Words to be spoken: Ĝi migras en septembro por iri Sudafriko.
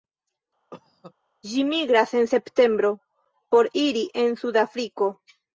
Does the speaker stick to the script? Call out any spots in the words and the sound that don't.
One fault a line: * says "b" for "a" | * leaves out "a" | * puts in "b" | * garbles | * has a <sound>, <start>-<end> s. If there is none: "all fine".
* has a cough, 0.7-1.1 s
* puts in "en"